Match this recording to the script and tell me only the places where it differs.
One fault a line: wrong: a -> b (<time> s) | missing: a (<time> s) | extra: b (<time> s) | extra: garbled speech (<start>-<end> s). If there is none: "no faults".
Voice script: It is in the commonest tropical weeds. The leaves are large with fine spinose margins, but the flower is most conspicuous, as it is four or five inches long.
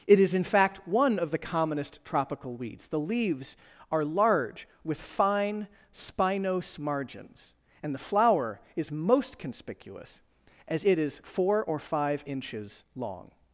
extra: fact one of (0.4 s)
wrong: but -> and (7.8 s)